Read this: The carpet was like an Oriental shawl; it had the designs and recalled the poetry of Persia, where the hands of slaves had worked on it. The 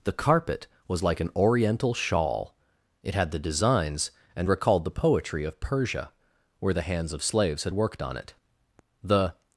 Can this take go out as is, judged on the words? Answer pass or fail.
pass